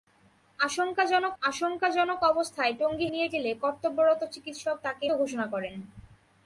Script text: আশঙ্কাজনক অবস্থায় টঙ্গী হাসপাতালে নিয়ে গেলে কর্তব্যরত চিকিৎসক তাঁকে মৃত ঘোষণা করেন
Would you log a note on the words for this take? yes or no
yes